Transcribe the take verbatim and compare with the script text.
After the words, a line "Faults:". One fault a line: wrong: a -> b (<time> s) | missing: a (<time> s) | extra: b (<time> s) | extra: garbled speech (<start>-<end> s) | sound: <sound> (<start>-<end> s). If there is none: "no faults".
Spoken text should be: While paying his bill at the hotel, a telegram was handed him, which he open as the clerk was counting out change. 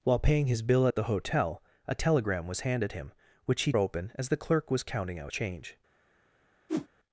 While paying his bill at the hotel, a telegram was handed him, which he open as the clerk was counting out change.
Faults:
sound: whoosh (6.7-6.9 s)